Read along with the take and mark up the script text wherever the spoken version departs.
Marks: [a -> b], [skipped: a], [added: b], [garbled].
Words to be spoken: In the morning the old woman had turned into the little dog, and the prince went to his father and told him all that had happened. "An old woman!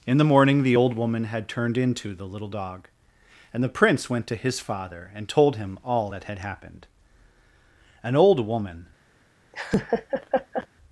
In the morning the old woman had turned into the little dog, and the prince went to his father and told him all that had happened. "An old woman!